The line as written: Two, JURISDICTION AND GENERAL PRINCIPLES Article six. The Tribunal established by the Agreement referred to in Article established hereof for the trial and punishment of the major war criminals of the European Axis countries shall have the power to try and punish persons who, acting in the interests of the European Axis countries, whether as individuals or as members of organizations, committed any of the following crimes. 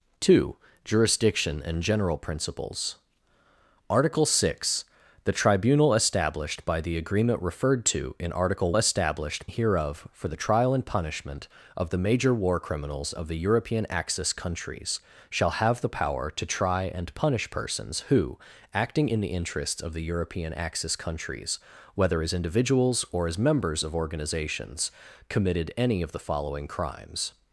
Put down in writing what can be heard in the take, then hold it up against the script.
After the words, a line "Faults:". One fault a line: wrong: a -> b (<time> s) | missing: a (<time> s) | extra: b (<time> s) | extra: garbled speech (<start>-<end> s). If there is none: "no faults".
Two, JURISDICTION AND GENERAL PRINCIPLES Article six. The Tribunal established by the Agreement referred to in Article established hereof for the trial and punishment of the major war criminals of the European Axis countries shall have the power to try and punish persons who, acting in the interests of the European Axis countries, whether as individuals or as members of organizations, committed any of the following crimes.
Faults:
no faults